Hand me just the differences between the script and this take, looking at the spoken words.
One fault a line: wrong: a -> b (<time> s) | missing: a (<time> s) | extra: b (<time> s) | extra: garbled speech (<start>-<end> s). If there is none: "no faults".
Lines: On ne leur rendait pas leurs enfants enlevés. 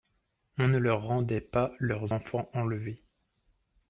no faults